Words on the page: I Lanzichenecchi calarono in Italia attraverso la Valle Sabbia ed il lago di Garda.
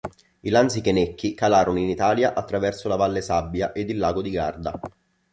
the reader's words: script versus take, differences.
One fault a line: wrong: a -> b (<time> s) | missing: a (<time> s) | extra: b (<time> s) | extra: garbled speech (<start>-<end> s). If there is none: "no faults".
no faults